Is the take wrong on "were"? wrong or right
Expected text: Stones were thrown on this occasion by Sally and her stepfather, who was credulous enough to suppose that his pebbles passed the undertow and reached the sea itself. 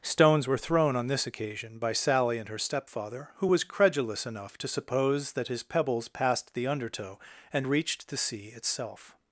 right